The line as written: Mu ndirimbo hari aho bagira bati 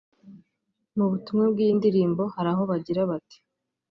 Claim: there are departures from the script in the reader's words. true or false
true